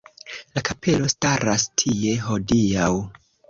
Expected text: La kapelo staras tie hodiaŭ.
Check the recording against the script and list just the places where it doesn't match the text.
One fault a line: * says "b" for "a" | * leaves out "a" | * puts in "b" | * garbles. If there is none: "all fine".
all fine